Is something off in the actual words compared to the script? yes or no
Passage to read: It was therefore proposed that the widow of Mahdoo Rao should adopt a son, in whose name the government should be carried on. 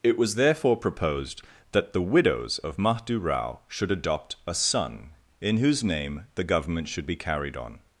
yes